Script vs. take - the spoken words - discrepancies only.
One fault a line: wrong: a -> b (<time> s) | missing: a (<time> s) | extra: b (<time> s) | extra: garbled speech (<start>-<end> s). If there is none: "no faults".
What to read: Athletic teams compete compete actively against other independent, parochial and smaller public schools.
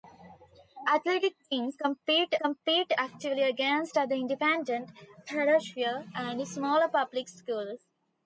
no faults